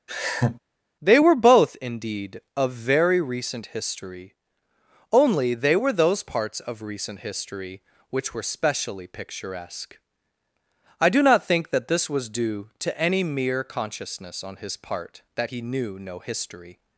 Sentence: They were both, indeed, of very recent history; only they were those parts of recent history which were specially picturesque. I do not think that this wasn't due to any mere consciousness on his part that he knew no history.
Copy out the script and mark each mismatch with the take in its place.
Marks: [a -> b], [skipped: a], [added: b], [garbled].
They were both, indeed, of very recent history; only they were those parts of recent history which were specially picturesque. I do not think that this [wasn't -> was] due to any mere consciousness on his part that he knew no history.